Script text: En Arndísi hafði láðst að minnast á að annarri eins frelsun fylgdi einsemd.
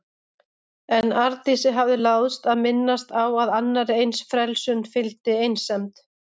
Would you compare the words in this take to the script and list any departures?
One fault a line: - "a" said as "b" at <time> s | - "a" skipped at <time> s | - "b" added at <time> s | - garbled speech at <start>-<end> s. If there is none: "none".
none